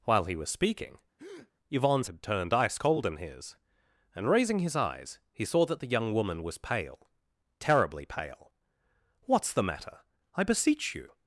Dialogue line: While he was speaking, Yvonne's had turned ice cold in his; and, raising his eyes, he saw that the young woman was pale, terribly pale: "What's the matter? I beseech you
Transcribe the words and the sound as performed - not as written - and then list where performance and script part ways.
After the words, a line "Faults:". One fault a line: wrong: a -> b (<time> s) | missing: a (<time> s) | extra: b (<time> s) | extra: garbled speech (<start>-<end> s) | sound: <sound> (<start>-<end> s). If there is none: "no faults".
While he was speaking, Yvonne's had turned ice cold in his; and, raising his eyes, he saw that the young woman was pale, terribly pale: "What's the matter? I beseech you
Faults:
sound: breath (1.2-1.5 s)